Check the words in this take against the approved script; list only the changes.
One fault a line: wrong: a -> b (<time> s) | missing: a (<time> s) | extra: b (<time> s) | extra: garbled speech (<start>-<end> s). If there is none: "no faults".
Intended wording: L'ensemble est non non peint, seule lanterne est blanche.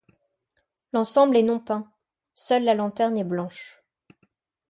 missing: non (1.6 s)
extra: la (2.6 s)